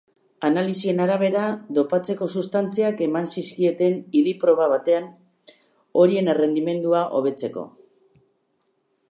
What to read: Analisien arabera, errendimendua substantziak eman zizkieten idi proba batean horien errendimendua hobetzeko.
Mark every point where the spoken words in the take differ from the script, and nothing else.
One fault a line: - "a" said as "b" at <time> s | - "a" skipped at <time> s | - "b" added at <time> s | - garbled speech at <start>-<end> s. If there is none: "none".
- "errendimendua" said as "dopatzeko" at 1.8 s